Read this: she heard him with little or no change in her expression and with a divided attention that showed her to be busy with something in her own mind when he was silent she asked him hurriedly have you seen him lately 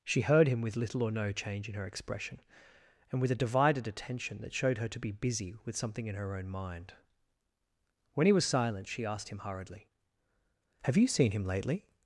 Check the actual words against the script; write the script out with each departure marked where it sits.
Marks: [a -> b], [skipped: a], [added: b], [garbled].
she heard him with little or no change in her expression and with a divided attention that showed her to be busy with something in her own mind when he was silent she asked him hurriedly have you seen him lately